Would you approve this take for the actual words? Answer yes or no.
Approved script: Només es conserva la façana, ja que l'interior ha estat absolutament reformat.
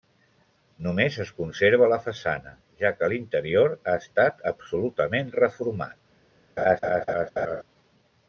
yes